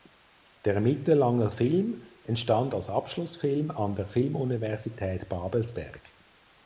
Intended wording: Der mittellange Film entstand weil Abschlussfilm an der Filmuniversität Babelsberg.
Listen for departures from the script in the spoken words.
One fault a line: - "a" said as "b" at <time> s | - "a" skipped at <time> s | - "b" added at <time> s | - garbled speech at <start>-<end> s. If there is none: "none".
- "weil" said as "als" at 2.7 s